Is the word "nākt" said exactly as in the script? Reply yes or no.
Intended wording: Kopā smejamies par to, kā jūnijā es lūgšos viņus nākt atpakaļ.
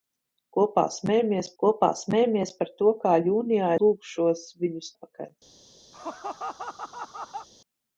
no